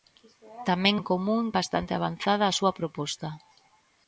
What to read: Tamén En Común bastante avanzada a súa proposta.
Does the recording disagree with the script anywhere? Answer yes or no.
no